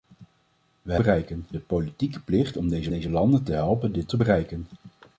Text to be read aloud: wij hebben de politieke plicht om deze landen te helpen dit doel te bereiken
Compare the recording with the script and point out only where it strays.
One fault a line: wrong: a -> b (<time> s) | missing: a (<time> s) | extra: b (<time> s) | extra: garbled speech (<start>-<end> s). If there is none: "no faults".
wrong: hebben -> bereiken (0.9 s)
extra: deze (2.9 s)
missing: doel (4.1 s)